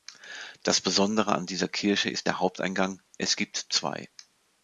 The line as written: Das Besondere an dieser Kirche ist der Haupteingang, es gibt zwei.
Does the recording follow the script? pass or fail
pass